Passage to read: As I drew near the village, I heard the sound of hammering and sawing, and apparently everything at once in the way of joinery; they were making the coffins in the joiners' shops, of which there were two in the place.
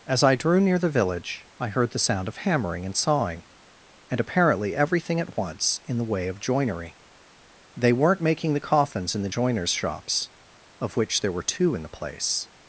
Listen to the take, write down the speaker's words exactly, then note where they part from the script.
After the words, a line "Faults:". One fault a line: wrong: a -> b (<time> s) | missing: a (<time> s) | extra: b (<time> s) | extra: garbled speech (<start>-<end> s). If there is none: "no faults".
As I drew near the village, I heard the sound of hammering and sawing, and apparently everything at once in the way of joinery; they weren't making the coffins in the joiners' shops, of which there were two in the place.
Faults:
wrong: were -> weren't (7.9 s)